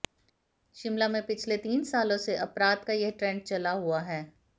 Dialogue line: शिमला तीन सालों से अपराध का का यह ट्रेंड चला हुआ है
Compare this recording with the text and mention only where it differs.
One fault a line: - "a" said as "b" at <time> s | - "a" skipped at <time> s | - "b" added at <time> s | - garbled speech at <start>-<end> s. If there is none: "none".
- "में पिछले" added at 1.1 s
- "का" skipped at 2.9 s